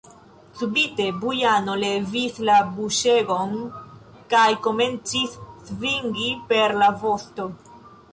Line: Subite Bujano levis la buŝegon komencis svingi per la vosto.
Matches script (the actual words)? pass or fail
fail